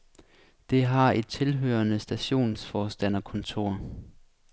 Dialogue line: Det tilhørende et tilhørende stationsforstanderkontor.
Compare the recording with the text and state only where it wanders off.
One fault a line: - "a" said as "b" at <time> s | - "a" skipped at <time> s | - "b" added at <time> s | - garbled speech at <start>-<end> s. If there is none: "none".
- "tilhørende" said as "har" at 0.8 s